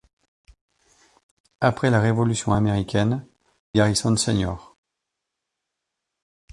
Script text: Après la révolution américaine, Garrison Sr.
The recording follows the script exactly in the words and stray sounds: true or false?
true